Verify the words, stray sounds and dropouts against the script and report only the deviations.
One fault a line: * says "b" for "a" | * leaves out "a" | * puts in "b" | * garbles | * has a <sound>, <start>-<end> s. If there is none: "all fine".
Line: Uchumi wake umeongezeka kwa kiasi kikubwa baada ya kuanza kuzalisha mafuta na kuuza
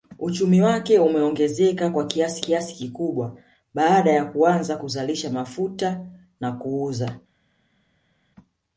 * puts in "kiasi"